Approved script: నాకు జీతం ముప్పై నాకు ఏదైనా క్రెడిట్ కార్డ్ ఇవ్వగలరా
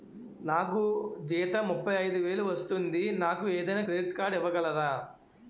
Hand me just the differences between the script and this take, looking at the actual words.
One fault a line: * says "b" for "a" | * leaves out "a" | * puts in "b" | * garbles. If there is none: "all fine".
* puts in "ఐదు వేలు వస్తుంది"